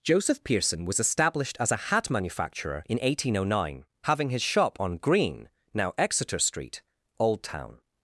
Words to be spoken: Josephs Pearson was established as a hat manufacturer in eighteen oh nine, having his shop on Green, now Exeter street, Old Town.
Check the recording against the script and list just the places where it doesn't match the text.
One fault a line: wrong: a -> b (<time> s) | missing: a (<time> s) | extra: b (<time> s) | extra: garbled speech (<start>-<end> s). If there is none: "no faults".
wrong: Josephs -> Joseph (0.0 s)